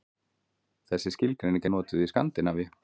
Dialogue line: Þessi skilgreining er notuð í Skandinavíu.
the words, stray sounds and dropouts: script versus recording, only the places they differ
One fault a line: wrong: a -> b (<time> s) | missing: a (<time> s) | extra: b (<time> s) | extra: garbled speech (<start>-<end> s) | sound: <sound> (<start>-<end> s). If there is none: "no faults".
no faults